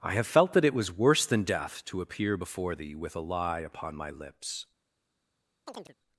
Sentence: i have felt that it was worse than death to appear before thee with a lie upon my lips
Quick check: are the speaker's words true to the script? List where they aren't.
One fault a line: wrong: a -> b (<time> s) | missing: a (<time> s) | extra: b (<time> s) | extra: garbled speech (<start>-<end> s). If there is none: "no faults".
no faults